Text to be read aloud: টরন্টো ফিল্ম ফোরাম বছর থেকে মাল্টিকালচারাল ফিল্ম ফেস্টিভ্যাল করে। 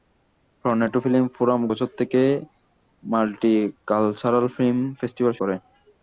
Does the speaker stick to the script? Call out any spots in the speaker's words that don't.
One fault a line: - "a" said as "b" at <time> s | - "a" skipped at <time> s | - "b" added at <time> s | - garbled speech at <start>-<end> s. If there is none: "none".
none